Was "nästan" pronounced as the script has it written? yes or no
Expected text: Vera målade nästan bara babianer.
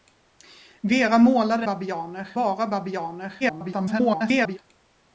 no